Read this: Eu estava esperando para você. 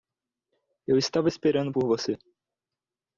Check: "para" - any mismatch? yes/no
yes